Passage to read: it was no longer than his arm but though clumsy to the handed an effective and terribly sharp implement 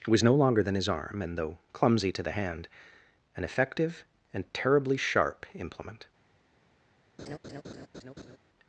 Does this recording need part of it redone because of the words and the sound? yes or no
yes